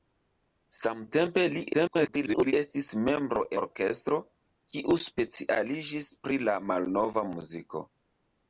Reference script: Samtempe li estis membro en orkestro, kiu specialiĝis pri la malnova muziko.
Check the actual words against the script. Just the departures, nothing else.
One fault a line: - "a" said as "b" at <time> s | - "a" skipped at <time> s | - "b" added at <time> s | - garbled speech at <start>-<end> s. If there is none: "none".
- garbled speech at 1.7-2.5 s
- "en" skipped at 3.4 s